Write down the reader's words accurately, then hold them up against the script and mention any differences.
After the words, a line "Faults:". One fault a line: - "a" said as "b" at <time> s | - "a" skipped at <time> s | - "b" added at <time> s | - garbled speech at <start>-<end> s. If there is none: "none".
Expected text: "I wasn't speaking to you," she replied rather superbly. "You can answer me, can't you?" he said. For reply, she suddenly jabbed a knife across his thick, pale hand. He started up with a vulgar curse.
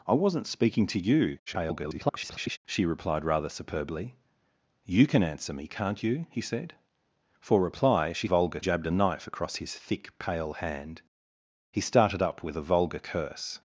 "I wasn't speaking to you," [garbled] she replied rather superbly. "You can answer me, can't you?" he said. For reply, she vulgar jabbed a knife across his thick, pale hand. He started up with a vulgar curse.
Faults:
- garbled speech at 1.5-2.6 s
- "suddenly" said as "vulgar" at 8.2 s